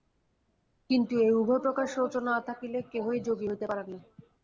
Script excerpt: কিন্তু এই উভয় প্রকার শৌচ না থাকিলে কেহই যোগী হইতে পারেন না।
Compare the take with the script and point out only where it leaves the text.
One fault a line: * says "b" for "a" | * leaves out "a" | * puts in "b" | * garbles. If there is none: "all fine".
all fine